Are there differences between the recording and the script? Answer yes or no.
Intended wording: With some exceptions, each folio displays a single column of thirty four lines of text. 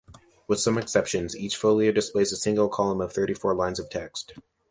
no